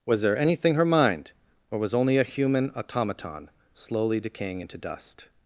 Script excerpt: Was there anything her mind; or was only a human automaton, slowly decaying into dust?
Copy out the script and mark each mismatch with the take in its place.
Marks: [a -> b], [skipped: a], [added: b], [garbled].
Was there anything her mind; or was only a human automaton, slowly decaying into dust?